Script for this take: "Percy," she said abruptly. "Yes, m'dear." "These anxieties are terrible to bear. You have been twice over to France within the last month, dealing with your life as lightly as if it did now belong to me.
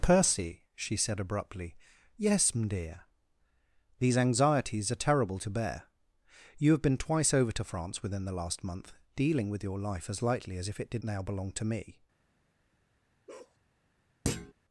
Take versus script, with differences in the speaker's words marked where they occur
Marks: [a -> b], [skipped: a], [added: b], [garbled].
"Percy," she said abruptly. "Yes, m'dear." "These anxieties are terrible to bear. You have been twice over to France within the last month, dealing with your life as lightly as if it did now belong to me.